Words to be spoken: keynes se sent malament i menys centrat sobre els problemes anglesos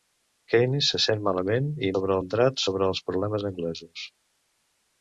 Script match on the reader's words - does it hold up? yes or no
no